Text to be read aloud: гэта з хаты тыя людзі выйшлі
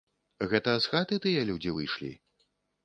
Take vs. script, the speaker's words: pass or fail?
pass